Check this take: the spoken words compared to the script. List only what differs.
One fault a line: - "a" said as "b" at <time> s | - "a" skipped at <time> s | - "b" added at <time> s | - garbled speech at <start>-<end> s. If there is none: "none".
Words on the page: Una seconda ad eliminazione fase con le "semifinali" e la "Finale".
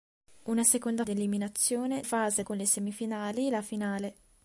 none